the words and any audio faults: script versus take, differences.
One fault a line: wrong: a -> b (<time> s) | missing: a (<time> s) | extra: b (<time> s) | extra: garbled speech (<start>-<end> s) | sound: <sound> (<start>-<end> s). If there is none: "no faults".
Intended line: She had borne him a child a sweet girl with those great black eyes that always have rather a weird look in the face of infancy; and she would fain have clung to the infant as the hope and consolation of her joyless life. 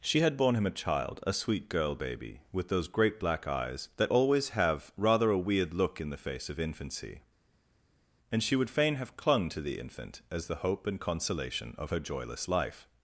extra: baby (1.9 s)